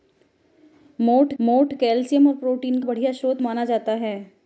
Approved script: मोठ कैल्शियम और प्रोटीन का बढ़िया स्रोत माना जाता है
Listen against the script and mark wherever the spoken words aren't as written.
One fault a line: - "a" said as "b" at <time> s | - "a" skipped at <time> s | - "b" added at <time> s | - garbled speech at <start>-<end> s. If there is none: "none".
- "मोठ" added at 1.4 s
- "का" skipped at 2.8 s